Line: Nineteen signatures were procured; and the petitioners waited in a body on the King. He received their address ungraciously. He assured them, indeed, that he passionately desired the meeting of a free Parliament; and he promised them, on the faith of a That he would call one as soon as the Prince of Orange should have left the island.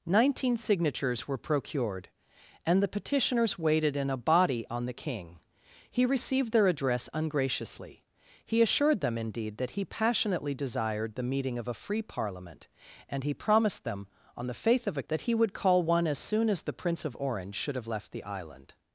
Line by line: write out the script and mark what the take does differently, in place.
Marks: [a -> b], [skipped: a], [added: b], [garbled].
Nineteen signatures were procured; and the petitioners waited in a body on the King. He received their address ungraciously. He assured them, indeed, that he passionately desired the meeting of a free Parliament; and he promised them, on the faith of a That he would call one as soon as the Prince of Orange should have left the island.